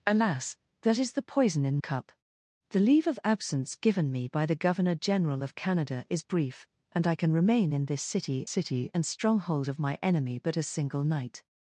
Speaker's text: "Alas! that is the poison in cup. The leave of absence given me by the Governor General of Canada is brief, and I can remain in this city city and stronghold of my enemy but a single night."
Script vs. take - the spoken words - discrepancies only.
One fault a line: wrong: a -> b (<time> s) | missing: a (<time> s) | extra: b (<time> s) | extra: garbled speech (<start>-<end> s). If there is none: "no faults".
no faults